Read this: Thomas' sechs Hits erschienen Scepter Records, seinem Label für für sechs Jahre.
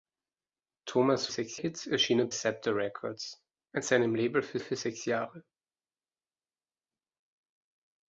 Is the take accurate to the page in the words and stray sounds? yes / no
yes